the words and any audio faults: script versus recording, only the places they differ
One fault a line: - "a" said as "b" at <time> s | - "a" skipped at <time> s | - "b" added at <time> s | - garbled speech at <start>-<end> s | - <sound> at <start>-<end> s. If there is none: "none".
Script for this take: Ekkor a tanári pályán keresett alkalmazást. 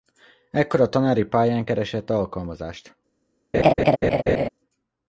- laugh at 3.5-4.5 s